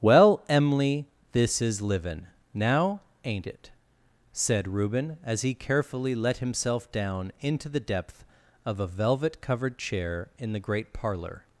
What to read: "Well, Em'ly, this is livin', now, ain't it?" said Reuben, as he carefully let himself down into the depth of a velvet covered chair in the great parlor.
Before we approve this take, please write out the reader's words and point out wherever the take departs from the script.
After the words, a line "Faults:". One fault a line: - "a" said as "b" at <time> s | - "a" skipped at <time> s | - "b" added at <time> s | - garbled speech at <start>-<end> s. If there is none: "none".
"Well, Em'ly, this is livin', now, ain't it?" said Reuben, as he carefully let himself down into the depth of a velvet covered chair in the great parlor.
Faults:
none